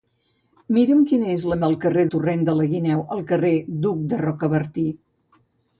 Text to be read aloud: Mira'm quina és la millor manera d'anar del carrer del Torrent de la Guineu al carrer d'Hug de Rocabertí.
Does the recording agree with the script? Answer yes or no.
no